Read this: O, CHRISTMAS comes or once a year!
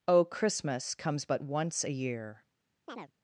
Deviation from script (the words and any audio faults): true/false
true